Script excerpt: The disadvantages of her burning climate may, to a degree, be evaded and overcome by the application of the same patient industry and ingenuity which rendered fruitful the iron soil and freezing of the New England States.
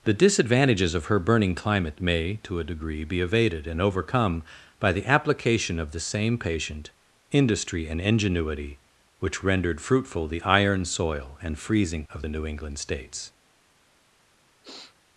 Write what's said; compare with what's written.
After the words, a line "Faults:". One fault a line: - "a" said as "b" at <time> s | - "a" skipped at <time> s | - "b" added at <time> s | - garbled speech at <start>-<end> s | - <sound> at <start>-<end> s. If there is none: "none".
The disadvantages of her burning climate may, to a degree, be evaded and overcome by the application of the same patient industry and ingenuity which rendered fruitful the iron soil and freezing of the New England States.
Faults:
- sniff at 14.6-15.0 s